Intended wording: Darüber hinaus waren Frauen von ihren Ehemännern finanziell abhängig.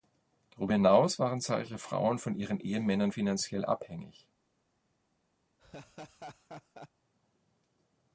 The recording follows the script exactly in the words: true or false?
false